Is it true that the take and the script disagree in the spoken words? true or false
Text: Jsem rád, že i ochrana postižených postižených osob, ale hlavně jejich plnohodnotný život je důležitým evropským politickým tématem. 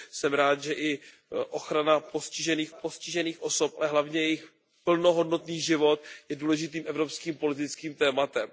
false